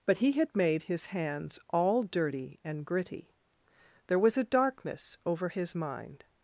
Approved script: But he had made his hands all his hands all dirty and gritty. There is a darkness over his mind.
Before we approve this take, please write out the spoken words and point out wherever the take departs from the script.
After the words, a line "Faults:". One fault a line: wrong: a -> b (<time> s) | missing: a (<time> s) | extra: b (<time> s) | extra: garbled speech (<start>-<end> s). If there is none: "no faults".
But he had made his hands all dirty and gritty. There was a darkness over his mind.
Faults:
missing: his hands all (2.0 s)
wrong: is -> was (4.2 s)